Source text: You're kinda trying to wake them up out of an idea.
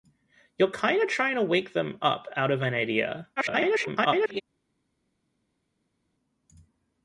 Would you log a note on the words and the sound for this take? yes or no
yes